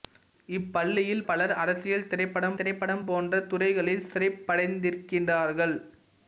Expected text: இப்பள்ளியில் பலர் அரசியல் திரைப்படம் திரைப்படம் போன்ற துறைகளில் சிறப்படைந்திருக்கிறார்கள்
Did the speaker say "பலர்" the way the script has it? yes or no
yes